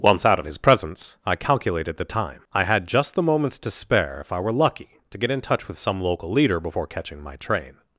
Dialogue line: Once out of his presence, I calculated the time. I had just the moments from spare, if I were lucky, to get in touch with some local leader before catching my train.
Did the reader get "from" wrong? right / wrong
wrong